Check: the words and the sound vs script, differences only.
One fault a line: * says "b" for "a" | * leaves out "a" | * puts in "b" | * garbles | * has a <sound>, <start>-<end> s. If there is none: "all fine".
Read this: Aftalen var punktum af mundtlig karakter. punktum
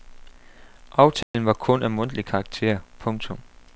* has a dropout, 1.2-1.3 s
* says "kun" for "punktum"